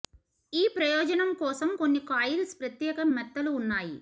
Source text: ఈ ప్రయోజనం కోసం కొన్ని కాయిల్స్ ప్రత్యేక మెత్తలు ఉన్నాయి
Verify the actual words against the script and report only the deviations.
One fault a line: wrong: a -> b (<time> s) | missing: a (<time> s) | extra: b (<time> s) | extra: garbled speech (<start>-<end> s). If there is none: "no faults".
no faults